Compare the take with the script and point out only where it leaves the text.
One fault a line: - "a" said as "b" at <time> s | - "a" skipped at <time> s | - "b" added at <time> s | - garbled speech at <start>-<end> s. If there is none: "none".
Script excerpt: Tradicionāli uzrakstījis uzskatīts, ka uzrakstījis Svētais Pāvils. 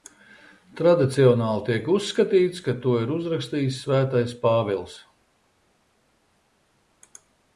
- "uzrakstījis" said as "tiek" at 1.7 s
- "to ir" added at 2.9 s